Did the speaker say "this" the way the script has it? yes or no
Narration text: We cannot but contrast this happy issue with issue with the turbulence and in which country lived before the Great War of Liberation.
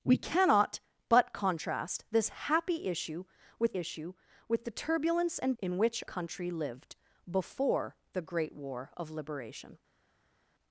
yes